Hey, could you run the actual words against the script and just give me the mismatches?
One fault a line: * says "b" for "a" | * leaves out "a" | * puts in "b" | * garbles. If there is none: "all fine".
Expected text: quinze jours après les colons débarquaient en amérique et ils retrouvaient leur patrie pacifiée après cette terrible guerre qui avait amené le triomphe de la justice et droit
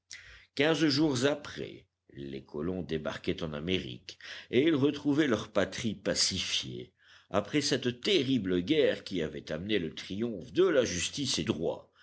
all fine